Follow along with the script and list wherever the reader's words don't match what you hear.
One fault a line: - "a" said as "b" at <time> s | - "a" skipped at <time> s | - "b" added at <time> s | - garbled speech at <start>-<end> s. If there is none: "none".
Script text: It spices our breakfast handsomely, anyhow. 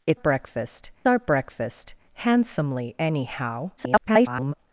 - "spices" said as "breakfast" at 0.1 s
- garbled speech at 3.8-4.5 s